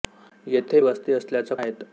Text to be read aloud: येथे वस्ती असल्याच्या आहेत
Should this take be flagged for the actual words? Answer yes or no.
no